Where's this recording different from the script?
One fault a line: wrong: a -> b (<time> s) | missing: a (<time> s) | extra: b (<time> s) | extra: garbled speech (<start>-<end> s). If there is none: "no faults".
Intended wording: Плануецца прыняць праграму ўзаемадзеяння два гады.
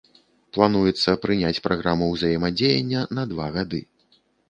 extra: на (3.2 s)